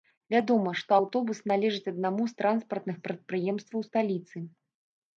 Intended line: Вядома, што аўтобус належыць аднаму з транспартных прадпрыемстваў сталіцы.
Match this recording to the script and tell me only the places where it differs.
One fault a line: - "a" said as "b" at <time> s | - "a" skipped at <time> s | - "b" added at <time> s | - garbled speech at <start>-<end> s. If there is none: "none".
none